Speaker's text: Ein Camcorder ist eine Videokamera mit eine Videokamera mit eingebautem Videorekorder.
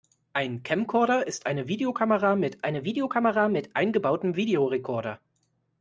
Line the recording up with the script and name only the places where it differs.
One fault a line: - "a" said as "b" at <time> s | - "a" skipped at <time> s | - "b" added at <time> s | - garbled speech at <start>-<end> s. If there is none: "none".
none